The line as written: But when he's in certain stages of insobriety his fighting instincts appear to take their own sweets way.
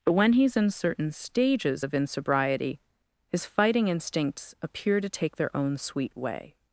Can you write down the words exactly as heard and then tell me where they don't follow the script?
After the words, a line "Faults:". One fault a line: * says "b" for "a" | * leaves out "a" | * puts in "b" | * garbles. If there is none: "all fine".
But when he's in certain stages of insobriety his fighting instincts appear to take their own sweet way.
Faults:
* says "sweet" for "sweets"